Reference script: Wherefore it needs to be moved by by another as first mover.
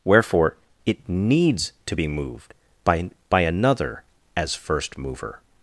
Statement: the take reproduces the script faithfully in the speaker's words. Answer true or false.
true